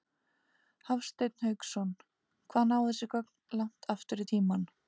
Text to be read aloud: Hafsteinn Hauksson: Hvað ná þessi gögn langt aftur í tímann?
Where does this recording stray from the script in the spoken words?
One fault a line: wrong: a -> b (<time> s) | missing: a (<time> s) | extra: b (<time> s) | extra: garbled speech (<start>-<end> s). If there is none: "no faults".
no faults